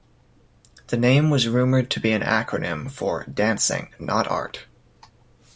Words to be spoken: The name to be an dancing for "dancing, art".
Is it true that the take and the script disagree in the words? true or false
true